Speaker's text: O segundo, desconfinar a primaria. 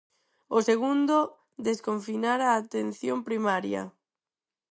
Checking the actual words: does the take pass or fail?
fail